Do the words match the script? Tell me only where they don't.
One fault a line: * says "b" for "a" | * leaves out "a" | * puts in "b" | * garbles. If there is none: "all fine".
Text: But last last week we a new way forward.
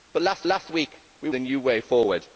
all fine